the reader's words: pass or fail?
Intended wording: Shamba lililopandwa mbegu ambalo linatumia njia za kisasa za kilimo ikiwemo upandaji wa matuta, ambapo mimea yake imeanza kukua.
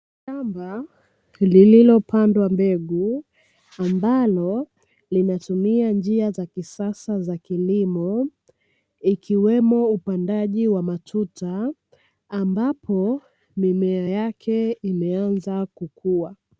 pass